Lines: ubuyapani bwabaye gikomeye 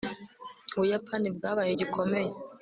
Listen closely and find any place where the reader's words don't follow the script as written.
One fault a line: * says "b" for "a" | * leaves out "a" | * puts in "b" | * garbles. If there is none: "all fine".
all fine